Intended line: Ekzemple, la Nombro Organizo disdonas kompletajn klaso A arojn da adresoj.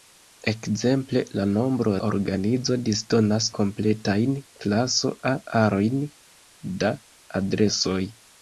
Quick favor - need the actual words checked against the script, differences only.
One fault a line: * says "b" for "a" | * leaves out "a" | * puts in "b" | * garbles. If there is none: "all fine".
all fine